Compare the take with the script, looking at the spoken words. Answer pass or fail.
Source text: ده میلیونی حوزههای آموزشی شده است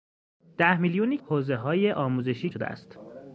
pass